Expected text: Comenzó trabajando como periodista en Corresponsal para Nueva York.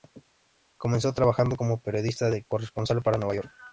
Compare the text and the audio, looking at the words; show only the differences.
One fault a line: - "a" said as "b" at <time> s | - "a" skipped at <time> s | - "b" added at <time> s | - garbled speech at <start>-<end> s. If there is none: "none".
none